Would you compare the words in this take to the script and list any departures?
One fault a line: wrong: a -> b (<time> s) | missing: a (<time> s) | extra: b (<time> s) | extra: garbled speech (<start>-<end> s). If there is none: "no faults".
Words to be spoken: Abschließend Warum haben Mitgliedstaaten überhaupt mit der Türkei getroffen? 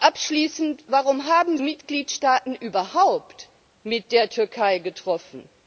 no faults